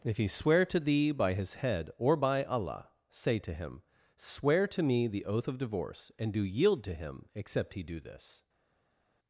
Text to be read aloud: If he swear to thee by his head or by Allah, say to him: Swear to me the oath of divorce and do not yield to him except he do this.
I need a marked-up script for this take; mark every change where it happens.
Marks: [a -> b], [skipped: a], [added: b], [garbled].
If he swear to thee by his head or by Allah, say to him: Swear to me the oath of divorce and do [skipped: not] yield to him except he do this.